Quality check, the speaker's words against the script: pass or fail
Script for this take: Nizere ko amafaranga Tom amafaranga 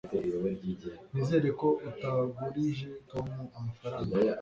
fail